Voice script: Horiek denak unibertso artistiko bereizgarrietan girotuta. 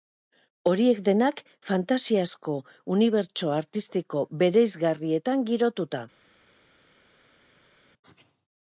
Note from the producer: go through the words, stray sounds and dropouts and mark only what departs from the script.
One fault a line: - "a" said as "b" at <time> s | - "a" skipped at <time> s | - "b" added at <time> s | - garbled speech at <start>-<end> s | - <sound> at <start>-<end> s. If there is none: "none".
- "fantasiazko" added at 1.7 s